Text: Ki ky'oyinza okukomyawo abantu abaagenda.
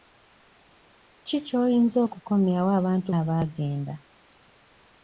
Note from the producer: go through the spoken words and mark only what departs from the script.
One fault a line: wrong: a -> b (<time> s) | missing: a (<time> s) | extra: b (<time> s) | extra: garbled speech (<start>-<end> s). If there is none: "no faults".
no faults